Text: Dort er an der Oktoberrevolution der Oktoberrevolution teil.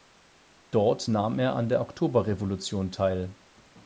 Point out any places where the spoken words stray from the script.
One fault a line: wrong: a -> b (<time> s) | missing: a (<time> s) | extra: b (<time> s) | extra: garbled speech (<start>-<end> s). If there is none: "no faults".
extra: nahm (1.1 s)
missing: der Oktoberrevolution (2.9 s)